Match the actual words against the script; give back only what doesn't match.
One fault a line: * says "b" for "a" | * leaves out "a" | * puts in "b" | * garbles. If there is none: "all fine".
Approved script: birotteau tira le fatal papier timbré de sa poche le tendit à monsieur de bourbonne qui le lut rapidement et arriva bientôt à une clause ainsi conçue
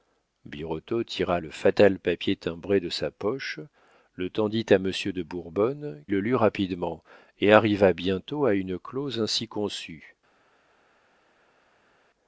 * leaves out "qui"